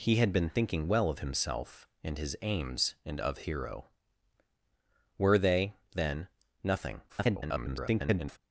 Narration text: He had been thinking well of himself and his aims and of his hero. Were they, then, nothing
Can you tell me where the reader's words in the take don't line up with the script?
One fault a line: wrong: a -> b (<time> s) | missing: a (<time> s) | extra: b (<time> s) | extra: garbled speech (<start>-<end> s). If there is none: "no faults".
missing: his (3.4 s)
extra: garbled speech (7.1-8.4 s)